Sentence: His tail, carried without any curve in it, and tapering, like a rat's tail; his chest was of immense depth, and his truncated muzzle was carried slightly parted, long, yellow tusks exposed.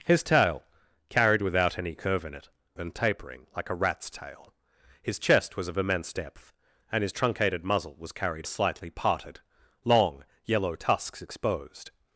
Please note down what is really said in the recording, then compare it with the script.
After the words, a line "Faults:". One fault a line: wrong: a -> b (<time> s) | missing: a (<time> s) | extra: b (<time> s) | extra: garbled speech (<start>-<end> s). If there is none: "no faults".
His tail, carried without any curve in it, and tapering, like a rat's tail; his chest was of immense depth, and his truncated muzzle was carried slightly parted, long, yellow tusks exposed.
Faults:
no faults